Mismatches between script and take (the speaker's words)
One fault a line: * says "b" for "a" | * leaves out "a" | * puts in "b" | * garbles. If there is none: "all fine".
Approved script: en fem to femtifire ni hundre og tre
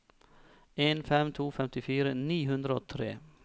all fine